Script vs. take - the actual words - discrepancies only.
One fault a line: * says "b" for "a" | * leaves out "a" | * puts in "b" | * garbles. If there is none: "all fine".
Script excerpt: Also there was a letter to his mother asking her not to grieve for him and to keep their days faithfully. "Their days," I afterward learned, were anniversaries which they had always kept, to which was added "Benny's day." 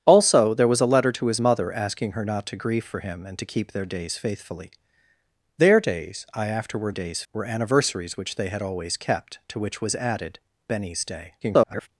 * says "days" for "learned"
* garbles